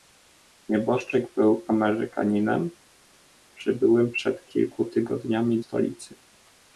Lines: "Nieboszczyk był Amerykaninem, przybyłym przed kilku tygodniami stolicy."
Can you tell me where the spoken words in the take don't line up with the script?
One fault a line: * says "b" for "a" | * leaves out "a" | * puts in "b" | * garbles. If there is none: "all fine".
all fine